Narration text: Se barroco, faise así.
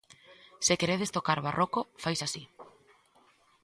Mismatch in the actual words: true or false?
true